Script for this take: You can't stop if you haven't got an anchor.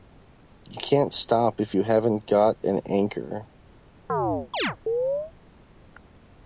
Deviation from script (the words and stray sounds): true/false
true